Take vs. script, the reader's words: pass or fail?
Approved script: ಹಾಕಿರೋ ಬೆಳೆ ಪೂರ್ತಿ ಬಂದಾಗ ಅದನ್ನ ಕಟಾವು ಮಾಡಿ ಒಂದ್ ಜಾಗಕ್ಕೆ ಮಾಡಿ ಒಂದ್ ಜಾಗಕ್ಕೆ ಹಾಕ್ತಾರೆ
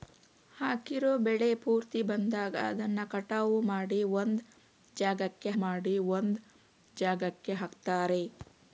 pass